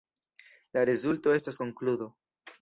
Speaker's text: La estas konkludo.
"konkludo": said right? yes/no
yes